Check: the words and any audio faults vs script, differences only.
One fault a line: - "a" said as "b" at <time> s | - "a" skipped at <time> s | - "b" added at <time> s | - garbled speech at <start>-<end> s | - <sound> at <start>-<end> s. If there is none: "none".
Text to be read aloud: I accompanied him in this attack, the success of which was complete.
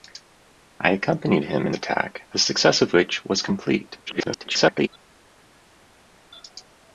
- "this" skipped at 1.8 s
- garbled speech at 4.1-4.9 s